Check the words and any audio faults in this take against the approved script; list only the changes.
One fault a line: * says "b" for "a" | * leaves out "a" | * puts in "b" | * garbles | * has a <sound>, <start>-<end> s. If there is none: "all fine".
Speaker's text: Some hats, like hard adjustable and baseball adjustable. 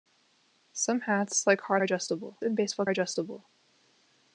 all fine